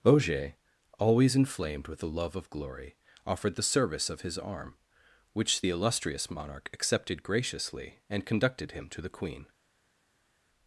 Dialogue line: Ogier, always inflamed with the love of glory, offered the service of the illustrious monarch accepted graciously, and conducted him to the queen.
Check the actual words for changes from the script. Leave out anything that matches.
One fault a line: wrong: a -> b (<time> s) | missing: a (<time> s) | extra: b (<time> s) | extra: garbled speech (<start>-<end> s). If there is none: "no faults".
extra: his arm which (4.2 s)